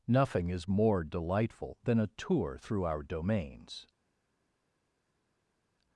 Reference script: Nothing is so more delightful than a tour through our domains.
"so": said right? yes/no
no